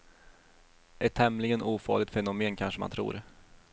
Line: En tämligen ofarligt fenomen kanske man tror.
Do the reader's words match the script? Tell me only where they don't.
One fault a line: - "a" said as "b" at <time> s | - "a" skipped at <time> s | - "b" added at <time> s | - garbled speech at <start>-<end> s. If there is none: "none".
- "En" said as "Ett" at 1.0 s